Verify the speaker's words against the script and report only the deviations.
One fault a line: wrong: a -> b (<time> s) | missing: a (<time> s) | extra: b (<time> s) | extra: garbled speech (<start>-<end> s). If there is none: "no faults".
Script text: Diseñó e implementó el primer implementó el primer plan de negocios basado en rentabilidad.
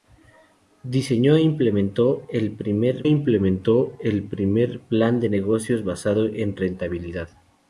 no faults